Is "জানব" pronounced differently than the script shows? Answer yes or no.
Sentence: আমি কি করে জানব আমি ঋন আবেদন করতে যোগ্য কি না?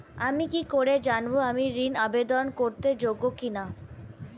no